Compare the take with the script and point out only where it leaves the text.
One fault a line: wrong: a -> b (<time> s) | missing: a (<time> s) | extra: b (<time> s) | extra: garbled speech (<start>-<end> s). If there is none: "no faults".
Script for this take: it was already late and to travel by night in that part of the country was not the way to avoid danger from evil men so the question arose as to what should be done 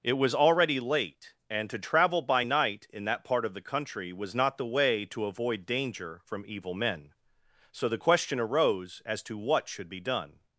no faults